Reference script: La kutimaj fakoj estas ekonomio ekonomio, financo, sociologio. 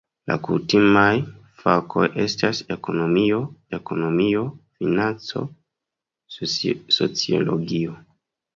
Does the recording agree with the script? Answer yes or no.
yes